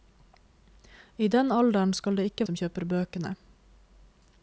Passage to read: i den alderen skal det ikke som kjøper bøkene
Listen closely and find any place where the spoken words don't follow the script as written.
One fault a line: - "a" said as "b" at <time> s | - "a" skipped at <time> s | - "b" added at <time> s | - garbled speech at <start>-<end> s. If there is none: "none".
none